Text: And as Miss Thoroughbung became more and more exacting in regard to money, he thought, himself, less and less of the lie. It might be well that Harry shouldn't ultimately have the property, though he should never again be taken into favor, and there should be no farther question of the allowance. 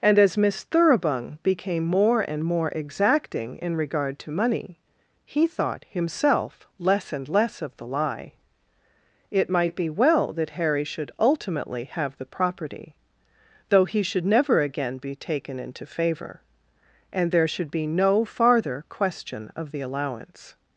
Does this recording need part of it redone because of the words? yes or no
yes